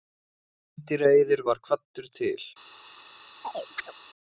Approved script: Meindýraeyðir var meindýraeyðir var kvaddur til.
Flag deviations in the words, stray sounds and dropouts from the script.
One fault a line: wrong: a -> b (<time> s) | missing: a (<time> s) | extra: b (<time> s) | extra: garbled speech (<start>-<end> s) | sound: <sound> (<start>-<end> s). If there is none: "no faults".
missing: meindýraeyðir var (1.6 s)
sound: chirp (3.4-3.9 s)